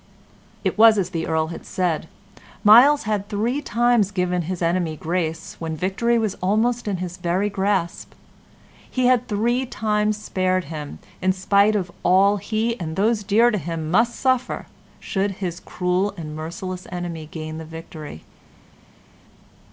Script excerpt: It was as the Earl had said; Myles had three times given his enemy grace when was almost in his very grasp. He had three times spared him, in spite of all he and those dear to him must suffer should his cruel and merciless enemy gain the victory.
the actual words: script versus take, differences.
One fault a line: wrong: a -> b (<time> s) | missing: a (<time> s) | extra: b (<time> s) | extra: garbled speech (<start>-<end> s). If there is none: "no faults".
extra: victory (5.8 s)